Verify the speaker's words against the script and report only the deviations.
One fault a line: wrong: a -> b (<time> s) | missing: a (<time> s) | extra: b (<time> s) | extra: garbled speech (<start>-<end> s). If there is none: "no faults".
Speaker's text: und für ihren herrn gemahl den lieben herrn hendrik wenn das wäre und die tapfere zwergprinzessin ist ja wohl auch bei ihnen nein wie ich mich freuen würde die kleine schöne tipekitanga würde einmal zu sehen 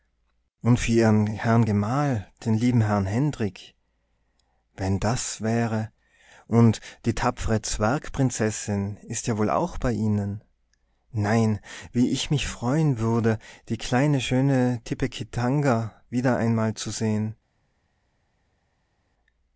wrong: würde -> wieder (16.1 s)